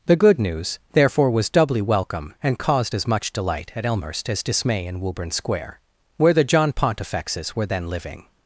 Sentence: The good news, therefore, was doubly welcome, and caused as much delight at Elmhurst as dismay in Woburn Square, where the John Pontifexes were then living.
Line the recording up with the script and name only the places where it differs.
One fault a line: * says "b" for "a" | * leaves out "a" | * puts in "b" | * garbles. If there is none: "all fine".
all fine